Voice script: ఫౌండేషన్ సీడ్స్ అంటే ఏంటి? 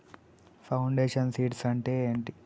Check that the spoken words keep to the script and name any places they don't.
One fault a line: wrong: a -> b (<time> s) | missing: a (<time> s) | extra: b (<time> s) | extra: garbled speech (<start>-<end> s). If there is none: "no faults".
no faults